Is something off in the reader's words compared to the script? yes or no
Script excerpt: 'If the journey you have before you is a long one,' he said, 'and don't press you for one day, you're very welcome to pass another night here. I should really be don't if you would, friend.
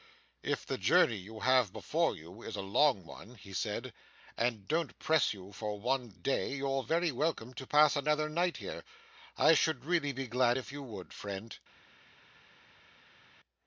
yes